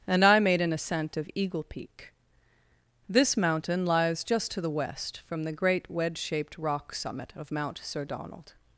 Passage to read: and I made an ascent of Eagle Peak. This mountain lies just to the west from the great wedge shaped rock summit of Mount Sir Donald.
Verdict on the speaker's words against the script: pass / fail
pass